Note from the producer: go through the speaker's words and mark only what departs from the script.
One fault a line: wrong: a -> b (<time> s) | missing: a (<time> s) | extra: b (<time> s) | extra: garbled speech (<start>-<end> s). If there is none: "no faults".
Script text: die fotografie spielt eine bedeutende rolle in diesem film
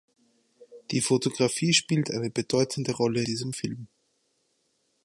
missing: in (3.2 s)